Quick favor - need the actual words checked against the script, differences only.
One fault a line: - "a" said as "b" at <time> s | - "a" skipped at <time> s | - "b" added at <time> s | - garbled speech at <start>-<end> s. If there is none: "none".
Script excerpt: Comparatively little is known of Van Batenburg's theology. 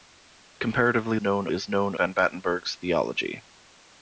- "little" said as "known" at 1.2 s
- "of" skipped at 2.0 s